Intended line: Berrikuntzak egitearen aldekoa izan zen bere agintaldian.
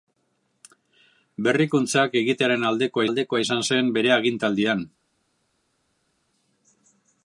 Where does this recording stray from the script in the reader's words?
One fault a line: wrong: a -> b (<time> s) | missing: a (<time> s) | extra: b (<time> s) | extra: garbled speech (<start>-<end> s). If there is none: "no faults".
extra: aldekoa (3.1 s)